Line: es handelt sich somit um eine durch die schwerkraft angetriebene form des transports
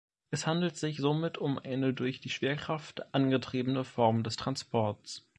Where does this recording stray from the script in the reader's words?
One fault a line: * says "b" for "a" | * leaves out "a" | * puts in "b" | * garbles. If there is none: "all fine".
all fine